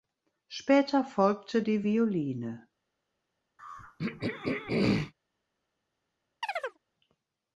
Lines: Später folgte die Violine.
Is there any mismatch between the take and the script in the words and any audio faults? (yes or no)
yes